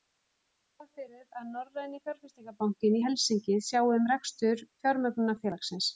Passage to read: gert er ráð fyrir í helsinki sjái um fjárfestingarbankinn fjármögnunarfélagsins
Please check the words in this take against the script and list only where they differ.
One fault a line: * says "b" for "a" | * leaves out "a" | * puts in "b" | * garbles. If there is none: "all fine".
* puts in "að norræni fjárfestingarbankinn"
* says "rekstur" for "fjárfestingarbankinn"